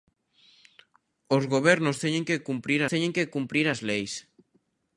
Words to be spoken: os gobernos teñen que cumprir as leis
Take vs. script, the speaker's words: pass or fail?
fail